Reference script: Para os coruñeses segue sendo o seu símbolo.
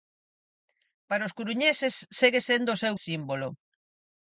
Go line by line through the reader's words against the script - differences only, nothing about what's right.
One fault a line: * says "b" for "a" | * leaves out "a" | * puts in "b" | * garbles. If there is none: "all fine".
all fine